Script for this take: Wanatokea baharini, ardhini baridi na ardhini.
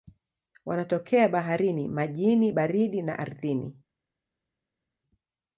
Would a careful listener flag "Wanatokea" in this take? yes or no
no